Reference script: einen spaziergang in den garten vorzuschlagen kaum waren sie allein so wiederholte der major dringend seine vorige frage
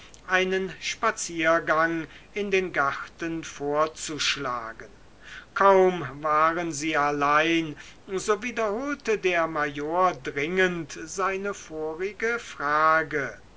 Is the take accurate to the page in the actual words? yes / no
yes